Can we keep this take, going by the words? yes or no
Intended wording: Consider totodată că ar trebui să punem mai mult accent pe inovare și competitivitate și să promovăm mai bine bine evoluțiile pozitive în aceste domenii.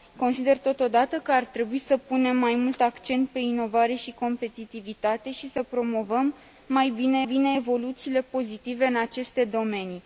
yes